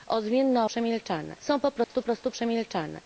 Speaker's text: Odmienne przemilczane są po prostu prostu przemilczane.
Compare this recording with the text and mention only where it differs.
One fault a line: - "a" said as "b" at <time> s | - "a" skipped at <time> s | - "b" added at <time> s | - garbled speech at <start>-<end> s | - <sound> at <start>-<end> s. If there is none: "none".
- dropout at 1.8-1.9 s